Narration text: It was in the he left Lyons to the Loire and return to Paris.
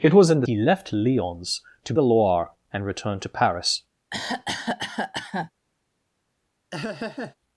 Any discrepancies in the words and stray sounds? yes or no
yes